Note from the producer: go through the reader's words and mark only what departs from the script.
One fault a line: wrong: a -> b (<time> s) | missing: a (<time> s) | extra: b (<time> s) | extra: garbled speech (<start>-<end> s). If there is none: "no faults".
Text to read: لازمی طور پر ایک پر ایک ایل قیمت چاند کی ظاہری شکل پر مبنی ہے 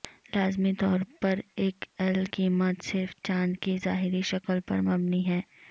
missing: پر ایک (1.8 s)
extra: صرف (2.8 s)